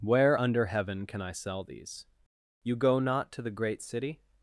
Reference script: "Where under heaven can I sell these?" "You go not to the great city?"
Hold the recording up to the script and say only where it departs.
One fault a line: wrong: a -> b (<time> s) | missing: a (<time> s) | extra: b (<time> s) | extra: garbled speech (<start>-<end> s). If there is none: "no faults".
no faults